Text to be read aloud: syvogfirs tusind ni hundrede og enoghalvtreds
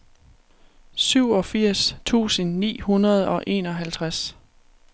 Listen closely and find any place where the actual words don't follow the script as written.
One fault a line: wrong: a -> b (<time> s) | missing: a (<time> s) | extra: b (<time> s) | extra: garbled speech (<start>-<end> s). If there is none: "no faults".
no faults